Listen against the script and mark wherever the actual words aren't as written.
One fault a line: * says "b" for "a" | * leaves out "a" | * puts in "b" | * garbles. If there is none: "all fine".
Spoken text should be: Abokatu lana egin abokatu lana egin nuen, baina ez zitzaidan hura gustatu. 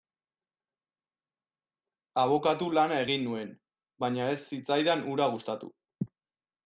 * leaves out "abokatu lana egin"